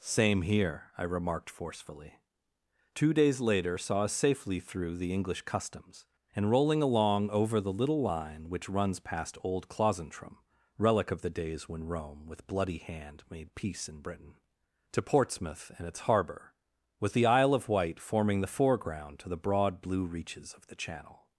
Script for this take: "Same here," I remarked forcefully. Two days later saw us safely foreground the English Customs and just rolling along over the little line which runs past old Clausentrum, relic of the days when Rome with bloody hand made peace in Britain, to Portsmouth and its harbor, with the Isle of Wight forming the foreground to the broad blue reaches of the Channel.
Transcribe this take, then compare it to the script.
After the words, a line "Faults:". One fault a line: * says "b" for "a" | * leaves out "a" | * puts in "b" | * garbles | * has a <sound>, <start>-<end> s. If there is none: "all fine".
"Same here," I remarked forcefully. Two days later saw us safely through the English Customs and rolling along over the little line which runs past old Clausentrum, relic of the days when Rome with bloody hand made peace in Britain, to Portsmouth and its harbor, with the Isle of Wight forming the foreground to the broad blue reaches of the Channel.
Faults:
* says "through" for "foreground"
* leaves out "just"